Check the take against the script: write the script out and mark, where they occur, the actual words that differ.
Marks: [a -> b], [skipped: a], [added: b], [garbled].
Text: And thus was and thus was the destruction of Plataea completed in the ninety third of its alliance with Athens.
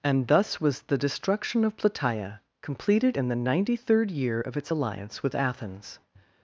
And thus was [skipped: and thus was] the destruction of Plataea completed in the ninety third [added: year] of its alliance with Athens.